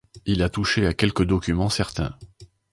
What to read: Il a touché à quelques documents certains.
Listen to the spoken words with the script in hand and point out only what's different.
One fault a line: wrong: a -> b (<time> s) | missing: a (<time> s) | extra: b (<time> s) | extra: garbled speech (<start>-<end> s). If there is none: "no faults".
no faults